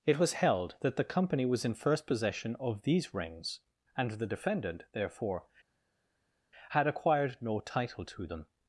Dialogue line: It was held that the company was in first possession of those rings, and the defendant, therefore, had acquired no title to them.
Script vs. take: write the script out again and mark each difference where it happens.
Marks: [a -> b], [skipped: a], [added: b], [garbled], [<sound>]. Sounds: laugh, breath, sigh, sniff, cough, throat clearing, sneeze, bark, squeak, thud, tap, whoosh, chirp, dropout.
It was held that the company was in first possession of [those -> these] rings, and the defendant, therefore, had acquired no title to them.